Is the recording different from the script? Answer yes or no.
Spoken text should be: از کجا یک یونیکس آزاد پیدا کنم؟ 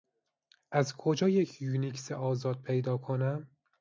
no